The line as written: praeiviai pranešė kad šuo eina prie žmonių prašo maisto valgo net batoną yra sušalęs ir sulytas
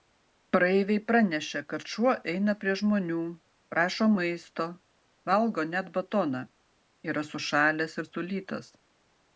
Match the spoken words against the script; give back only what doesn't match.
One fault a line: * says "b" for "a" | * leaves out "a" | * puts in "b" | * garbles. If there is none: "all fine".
all fine